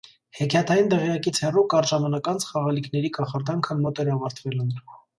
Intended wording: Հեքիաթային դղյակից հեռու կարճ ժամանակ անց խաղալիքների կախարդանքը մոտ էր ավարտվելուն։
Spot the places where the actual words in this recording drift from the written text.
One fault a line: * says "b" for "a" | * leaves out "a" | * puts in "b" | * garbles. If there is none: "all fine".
all fine